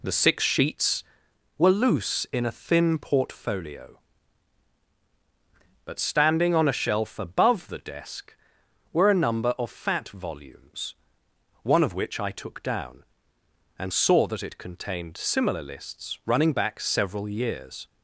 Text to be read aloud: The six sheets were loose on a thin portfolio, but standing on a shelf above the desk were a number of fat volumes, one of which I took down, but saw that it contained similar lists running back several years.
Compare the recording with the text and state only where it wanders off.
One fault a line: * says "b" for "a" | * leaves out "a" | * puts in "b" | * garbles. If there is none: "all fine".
* says "in" for "on"
* says "and" for "but"